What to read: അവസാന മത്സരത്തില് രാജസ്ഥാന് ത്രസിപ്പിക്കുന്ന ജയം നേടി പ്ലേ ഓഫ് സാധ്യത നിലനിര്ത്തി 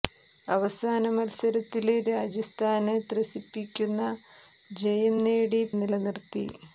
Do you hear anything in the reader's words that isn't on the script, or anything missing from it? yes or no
yes